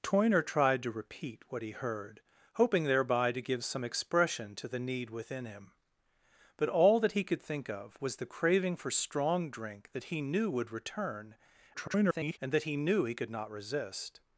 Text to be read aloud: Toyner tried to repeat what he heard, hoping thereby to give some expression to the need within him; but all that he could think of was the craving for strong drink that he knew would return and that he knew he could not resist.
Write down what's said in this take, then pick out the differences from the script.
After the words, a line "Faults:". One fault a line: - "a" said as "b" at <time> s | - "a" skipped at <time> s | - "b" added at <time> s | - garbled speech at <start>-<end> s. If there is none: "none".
Toyner tried to repeat what he heard, hoping thereby to give some expression to the need within him; but all that he could think of was the craving for strong drink that he knew would return [garbled] and that he knew he could not resist.
Faults:
- garbled speech at 11.7-12.4 s